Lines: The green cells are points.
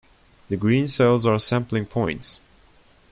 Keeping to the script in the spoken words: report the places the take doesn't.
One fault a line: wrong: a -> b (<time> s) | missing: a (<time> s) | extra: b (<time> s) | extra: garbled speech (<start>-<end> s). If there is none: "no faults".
extra: sampling (1.4 s)